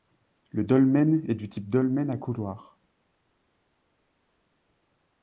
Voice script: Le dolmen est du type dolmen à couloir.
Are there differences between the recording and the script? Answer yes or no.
no